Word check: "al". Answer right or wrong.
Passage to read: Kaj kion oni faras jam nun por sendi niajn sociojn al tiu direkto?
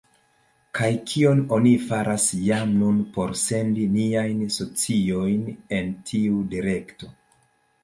wrong